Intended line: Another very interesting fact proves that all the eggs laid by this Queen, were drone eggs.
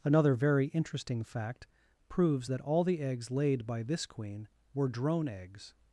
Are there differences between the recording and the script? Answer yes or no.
no